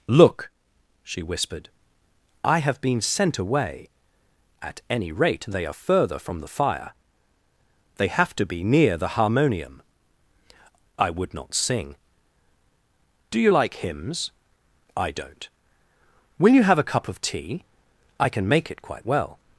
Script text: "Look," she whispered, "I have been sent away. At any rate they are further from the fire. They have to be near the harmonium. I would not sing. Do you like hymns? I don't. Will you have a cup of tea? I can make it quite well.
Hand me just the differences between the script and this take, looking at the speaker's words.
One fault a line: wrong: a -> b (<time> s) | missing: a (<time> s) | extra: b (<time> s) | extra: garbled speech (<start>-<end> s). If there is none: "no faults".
no faults